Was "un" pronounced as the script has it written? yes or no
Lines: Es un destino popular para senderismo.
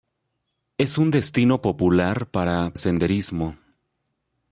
yes